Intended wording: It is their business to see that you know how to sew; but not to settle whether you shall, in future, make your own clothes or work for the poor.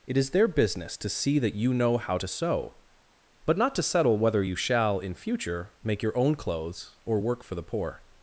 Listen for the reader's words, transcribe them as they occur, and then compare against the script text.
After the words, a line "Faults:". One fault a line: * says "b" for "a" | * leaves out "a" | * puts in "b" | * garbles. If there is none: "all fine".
It is their business to see that you know how to sew; but not to settle whether you shall, in future, make your own clothes or work for the poor.
Faults:
all fine